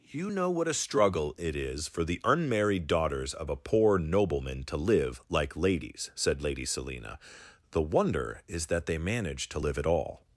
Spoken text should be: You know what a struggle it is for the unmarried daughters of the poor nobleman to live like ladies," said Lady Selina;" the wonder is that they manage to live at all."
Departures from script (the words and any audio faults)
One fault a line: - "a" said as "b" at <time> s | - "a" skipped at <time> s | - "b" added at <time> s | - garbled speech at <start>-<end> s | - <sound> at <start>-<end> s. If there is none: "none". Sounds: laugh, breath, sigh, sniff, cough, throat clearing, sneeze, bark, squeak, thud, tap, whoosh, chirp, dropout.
- "the" said as "a" at 3.5 s